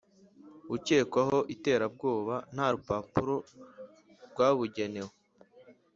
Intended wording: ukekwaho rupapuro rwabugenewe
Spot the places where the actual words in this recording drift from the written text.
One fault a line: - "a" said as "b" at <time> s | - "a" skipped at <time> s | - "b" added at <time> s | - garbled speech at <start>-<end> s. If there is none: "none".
- "iterabwoba nta" added at 1.5 s